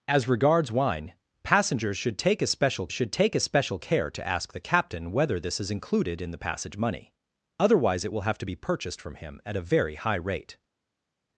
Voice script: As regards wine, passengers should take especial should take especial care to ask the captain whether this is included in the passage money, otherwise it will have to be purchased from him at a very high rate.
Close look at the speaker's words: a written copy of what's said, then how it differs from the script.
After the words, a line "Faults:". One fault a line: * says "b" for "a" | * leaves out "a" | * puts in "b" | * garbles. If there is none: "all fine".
As regards wine, passengers should take especial should take especial care to ask the captain whether this is included in the passage money, otherwise it will have to be purchased from him at a very high rate.
Faults:
all fine